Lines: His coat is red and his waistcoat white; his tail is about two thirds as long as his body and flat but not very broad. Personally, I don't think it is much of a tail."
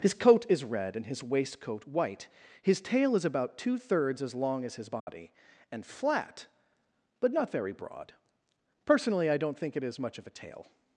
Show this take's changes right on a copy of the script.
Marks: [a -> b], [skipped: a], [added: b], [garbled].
His coat is red and his waistcoat white; his tail is about two thirds as long as his body and flat but not very broad. Personally, I don't think it is much of a tail."